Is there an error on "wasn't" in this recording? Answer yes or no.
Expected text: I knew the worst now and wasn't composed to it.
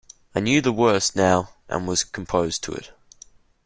yes